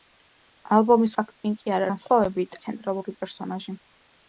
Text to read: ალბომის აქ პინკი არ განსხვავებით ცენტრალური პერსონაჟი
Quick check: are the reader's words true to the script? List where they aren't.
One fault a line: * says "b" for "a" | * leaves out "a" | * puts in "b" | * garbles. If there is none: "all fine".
all fine